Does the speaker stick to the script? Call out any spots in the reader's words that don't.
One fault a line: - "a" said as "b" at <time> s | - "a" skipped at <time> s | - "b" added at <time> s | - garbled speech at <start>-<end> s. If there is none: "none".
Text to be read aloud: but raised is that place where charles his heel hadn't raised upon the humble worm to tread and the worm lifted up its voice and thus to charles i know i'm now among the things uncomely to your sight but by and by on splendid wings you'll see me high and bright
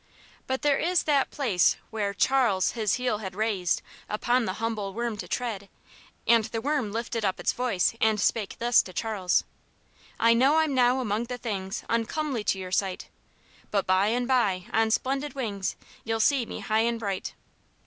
- "raised" said as "there" at 0.6 s
- "hadn't" said as "had" at 3.2 s
- "spake" added at 8.2 s